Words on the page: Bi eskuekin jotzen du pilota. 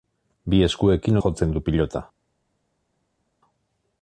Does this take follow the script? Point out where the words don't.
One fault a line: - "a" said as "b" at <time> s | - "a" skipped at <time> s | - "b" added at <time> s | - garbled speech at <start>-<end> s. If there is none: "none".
none